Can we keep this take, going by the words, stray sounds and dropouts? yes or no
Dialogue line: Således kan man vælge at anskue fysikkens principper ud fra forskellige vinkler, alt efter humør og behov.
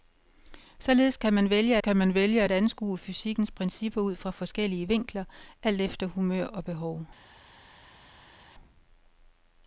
no